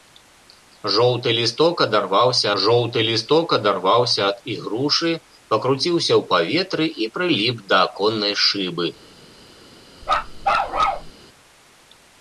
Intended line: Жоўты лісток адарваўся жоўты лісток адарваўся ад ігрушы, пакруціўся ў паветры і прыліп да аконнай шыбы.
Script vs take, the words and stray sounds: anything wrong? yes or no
yes